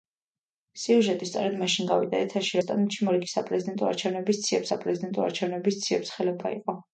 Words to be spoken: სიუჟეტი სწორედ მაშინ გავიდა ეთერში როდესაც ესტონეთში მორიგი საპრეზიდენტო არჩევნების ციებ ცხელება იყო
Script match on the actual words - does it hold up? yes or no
no